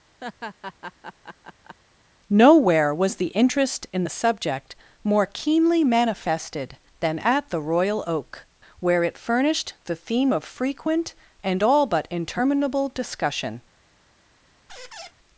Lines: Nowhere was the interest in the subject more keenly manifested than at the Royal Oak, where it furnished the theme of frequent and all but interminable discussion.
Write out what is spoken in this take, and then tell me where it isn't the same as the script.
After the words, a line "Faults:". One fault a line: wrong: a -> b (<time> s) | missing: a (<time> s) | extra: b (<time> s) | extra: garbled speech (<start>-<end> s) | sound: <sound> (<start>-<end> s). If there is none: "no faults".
Nowhere was the interest in the subject more keenly manifested than at the Royal Oak, where it furnished the theme of frequent and all but interminable discussion.
Faults:
sound: laugh (0.2-1.8 s)
sound: squeak (14.7-15.1 s)